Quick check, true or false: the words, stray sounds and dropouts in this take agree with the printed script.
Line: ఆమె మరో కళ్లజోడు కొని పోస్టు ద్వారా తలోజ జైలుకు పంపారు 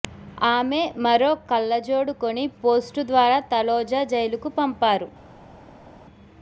true